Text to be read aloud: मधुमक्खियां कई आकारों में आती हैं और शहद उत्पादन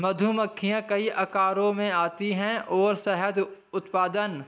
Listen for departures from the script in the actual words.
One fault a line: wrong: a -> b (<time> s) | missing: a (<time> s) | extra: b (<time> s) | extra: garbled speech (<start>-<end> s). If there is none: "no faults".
no faults